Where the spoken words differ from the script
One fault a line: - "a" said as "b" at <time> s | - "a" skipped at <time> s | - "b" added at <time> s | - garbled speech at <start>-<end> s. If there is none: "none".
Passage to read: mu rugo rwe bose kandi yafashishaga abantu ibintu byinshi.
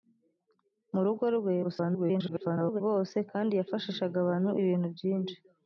- garbled speech at 1.6-2.8 s